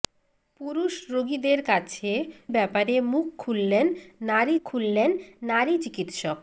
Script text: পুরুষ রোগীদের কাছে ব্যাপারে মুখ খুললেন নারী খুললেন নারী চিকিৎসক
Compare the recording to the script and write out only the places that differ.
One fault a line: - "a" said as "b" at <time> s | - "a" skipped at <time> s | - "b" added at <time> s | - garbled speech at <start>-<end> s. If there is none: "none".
none